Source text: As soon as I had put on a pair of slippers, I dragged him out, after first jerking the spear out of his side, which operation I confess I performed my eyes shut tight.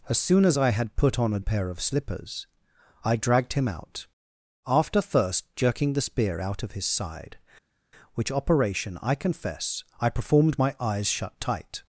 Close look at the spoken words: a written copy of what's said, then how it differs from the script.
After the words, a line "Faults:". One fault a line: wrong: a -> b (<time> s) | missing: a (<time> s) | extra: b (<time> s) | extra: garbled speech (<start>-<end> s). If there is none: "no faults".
As soon as I had put on a pair of slippers, I dragged him out, after first jerking the spear out of his side, which operation I confess I performed my eyes shut tight.
Faults:
no faults